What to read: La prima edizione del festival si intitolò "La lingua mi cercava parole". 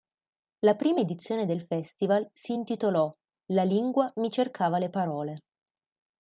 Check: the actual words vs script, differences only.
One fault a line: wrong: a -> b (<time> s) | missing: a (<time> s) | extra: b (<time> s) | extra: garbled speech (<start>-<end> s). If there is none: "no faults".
extra: le (4.8 s)